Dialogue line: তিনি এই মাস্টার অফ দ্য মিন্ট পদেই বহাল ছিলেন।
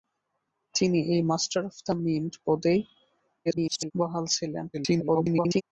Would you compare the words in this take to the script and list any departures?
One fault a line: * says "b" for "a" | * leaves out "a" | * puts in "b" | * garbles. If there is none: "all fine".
* garbles
* garbles